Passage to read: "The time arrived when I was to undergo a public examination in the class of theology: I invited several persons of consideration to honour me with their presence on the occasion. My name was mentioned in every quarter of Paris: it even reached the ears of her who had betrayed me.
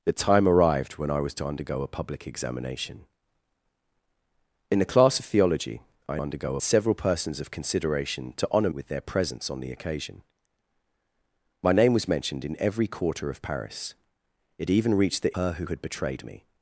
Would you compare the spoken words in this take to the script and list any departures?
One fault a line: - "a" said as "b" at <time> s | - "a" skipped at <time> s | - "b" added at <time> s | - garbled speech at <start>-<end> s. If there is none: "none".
- "invited" said as "undergo" at 6.2 s
- "me" skipped at 8.7 s
- "ears of" skipped at 15.4 s